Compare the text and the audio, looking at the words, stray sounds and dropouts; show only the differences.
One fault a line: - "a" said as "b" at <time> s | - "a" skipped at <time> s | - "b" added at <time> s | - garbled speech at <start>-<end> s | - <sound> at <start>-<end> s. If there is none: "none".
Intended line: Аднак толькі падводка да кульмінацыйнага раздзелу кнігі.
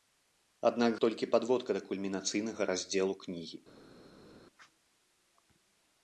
none